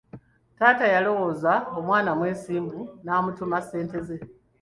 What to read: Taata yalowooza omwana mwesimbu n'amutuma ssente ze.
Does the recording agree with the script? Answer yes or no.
yes